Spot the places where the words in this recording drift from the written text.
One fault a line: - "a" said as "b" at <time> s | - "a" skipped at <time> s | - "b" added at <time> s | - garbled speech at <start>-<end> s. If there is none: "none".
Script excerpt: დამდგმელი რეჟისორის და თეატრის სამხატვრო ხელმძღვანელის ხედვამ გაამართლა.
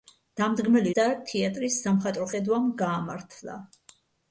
- "რეჟისორის" skipped at 0.9 s
- "ხელმძღვანელის" skipped at 2.3 s